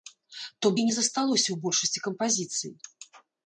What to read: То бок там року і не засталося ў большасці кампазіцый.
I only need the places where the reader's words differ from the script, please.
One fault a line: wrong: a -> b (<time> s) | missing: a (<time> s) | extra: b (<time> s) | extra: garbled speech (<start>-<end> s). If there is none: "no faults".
missing: бок там року (0.7 s)